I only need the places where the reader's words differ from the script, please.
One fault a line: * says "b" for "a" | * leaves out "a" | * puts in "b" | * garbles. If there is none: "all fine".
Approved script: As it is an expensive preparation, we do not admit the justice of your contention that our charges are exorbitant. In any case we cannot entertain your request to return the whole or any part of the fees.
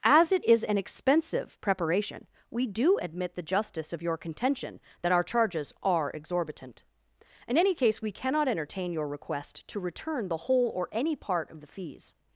* leaves out "not"